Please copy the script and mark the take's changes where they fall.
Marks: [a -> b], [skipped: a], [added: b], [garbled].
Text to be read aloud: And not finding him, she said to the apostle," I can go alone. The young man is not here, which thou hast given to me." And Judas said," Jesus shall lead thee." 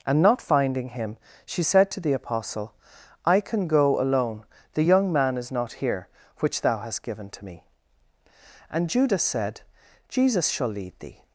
And not finding him, she said to the apostle," I can go alone. The young man is not here, which thou hast given to me." And Judas said," Jesus shall lead thee."